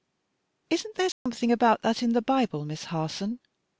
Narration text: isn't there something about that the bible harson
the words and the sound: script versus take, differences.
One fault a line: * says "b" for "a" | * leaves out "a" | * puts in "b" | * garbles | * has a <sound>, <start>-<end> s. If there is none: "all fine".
* has a dropout, 1.1-1.3 s
* puts in "in"
* puts in "miss"